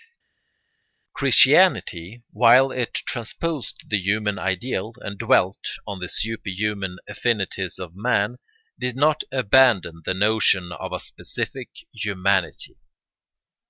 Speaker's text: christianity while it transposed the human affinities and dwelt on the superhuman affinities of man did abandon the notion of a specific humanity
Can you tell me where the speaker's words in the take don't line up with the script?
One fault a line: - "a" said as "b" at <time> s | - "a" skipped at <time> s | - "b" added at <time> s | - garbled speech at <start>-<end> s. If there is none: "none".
- "affinities" said as "ideal" at 4.4 s
- "not" added at 9.0 s